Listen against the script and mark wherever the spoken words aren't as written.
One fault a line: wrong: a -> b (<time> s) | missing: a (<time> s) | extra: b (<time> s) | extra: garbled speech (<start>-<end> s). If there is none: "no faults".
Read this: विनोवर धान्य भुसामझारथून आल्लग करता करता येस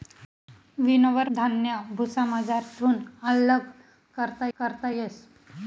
no faults